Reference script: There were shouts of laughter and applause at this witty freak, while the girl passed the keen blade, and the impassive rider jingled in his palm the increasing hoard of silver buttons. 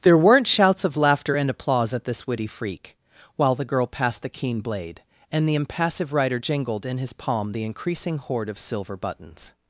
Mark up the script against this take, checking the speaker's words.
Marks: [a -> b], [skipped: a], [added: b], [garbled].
There [were -> weren't] shouts of laughter and applause at this witty freak, while the girl passed the keen blade, and the impassive rider jingled in his palm the increasing hoard of silver buttons.